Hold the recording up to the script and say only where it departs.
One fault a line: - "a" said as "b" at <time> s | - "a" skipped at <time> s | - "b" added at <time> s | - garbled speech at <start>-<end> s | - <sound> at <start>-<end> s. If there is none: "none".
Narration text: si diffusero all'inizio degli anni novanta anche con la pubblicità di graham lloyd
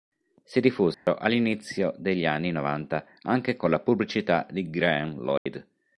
- dropout at 0.9-1.1 s
- dropout at 5.4-5.5 s